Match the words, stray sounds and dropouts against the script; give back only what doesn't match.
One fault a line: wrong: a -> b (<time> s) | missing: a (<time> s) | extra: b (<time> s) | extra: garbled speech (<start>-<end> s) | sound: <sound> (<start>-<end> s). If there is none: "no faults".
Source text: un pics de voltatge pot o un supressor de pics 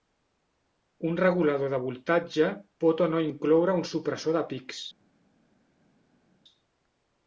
wrong: pics -> regulador (1.2 s)
extra: no incloure (3.1 s)